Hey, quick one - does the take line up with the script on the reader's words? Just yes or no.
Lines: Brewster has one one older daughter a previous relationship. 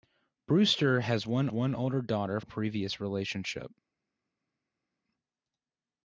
yes